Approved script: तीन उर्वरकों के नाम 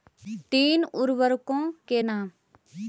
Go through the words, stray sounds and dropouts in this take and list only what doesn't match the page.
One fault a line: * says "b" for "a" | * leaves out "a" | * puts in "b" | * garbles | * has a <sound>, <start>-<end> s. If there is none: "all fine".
all fine